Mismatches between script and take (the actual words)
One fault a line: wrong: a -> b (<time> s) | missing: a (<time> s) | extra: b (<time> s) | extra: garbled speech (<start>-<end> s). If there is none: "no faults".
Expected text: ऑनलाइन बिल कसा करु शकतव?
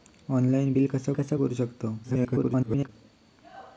extra: कसा (1.1 s)
extra: garbled speech (2.0-2.9 s)